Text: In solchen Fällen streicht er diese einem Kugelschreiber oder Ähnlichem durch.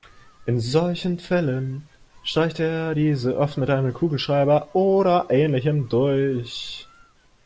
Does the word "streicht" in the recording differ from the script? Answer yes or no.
no